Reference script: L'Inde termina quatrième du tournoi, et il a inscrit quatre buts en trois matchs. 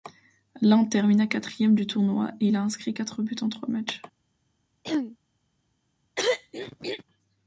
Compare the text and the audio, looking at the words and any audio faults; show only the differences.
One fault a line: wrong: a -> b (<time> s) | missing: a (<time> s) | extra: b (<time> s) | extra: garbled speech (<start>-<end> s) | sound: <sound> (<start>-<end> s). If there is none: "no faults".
sound: throat clearing (4.8-5.2 s)
sound: throat clearing (6.2-7.0 s)